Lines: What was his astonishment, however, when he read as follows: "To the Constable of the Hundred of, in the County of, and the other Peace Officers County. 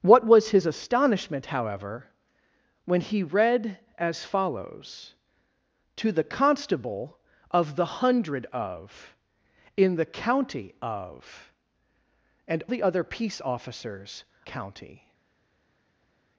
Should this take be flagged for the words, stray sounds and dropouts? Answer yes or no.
no